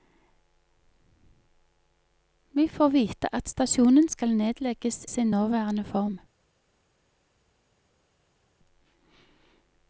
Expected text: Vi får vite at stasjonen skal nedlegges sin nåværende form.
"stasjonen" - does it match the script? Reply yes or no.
yes